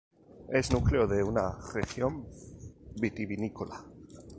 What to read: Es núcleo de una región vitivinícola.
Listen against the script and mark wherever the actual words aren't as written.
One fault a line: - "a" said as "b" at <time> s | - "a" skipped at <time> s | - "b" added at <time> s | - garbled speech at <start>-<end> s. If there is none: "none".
none